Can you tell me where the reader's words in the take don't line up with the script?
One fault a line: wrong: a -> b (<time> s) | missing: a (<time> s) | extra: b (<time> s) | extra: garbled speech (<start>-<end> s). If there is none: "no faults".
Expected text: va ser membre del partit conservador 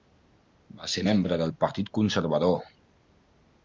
no faults